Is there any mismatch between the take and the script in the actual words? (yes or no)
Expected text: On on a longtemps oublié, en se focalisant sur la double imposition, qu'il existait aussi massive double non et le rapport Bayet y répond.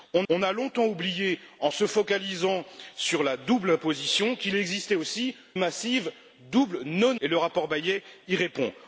no